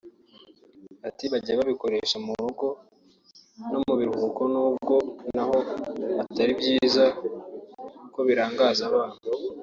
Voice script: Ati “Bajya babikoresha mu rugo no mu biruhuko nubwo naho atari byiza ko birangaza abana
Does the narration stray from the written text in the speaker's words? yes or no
no